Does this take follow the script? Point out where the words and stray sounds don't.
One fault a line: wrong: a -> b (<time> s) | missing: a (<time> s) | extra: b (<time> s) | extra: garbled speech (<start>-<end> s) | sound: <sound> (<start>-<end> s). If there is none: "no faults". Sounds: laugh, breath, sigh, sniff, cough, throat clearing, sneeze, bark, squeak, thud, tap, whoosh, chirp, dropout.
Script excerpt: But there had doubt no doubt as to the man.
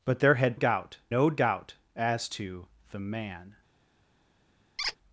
sound: squeak (4.8-5.0 s)